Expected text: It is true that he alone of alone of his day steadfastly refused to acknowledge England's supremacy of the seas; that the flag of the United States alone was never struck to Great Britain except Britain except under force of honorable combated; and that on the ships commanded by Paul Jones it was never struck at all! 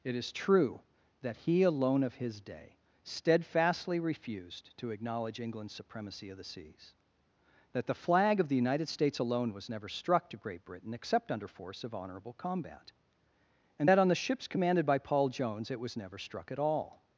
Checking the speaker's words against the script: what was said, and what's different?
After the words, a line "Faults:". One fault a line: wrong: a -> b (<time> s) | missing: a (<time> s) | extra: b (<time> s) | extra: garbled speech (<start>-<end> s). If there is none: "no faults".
It is true that he alone of his day steadfastly refused to acknowledge England's supremacy of the seas; that the flag of the United States alone was never struck to Great Britain except under force of honorable combat; and that on the ships commanded by Paul Jones it was never struck at all!
Faults:
missing: alone of (2.1 s)
missing: Britain except (11.3 s)
wrong: combated -> combat (12.3 s)